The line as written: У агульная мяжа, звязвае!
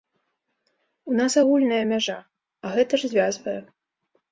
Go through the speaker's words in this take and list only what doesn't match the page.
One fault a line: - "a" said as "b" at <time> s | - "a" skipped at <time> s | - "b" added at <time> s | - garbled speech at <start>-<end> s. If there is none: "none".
- "нас" added at 1.2 s
- "а гэта ж" added at 2.6 s